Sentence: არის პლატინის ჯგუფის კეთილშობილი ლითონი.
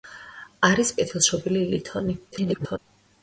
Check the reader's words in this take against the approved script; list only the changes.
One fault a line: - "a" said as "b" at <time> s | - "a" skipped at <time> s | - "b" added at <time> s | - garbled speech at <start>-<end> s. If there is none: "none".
- "პლატინის ჯგუფის" skipped at 0.9 s
- garbled speech at 2.3-2.8 s